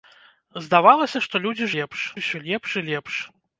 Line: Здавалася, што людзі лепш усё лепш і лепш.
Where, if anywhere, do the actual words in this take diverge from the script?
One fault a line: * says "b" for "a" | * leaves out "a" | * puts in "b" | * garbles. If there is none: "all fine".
all fine